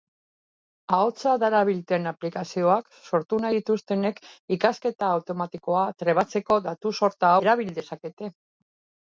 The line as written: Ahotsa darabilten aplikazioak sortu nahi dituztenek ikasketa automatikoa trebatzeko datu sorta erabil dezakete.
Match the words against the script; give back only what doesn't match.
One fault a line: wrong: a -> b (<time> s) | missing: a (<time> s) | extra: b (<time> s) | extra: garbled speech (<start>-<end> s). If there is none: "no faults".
no faults